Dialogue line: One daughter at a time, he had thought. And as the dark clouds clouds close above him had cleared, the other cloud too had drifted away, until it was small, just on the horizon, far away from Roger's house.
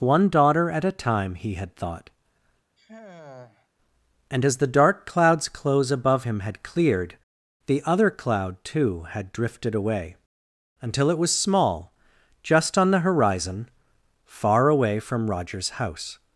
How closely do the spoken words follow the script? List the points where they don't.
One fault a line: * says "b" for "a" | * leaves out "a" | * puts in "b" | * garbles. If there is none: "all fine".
* leaves out "clouds"